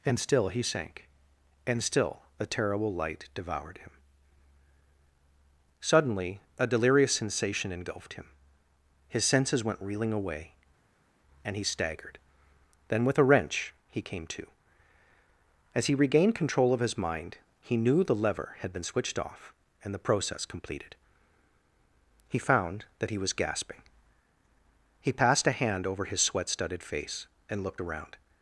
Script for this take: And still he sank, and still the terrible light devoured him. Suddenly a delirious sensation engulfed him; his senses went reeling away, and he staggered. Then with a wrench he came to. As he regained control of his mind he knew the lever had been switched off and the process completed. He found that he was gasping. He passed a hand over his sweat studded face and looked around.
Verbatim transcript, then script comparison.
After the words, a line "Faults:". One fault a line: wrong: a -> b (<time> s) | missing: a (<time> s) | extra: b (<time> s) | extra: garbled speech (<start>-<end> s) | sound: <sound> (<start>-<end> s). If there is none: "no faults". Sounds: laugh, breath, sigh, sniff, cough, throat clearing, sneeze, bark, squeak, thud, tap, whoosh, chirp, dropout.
And still he sank, and still a terrible light devoured him. Suddenly a delirious sensation engulfed him; his senses went reeling away, and he staggered. Then with a wrench he came to. As he regained control of his mind he knew the lever had been switched off and the process completed. He found that he was gasping. He passed a hand over his sweat studded face and looked around.
Faults:
wrong: the -> a (2.4 s)